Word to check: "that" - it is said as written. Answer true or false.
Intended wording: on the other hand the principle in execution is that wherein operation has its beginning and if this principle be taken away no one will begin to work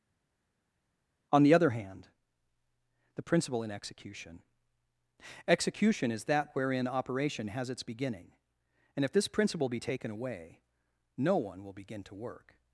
true